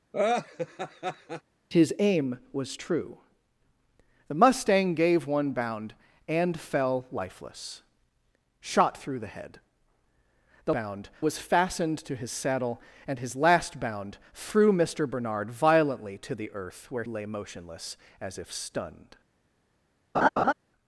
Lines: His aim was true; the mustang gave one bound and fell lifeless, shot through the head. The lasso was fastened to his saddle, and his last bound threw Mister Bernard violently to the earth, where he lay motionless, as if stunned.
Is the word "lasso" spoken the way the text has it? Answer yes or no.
no